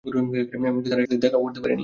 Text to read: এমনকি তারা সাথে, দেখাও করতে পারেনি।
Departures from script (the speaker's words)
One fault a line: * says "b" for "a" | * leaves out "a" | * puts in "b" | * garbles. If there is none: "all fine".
all fine